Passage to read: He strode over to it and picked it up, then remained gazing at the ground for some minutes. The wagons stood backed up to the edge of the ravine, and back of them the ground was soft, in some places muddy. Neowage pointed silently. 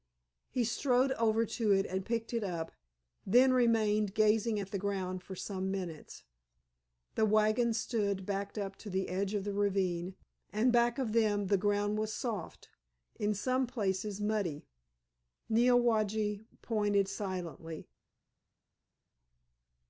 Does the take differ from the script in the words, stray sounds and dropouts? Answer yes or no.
no